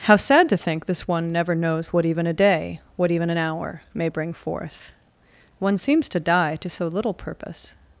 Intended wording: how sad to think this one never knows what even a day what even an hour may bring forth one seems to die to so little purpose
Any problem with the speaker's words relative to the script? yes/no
no